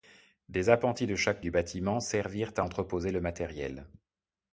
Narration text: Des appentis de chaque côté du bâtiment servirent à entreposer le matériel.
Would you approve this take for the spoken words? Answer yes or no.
no